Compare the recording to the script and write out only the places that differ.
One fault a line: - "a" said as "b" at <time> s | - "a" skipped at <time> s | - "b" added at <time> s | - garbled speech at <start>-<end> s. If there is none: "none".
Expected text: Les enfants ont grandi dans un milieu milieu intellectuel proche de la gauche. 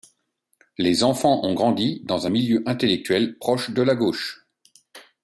- "milieu" skipped at 2.6 s